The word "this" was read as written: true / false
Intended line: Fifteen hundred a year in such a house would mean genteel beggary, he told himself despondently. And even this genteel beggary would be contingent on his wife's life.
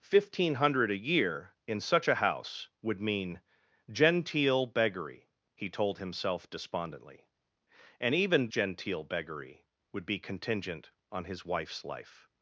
false